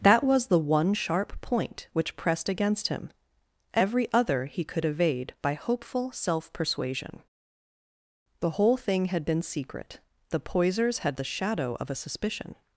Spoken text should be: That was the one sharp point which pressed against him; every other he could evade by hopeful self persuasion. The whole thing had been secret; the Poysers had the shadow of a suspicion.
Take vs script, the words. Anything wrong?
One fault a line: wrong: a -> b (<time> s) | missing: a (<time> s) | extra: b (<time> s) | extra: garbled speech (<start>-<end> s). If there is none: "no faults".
no faults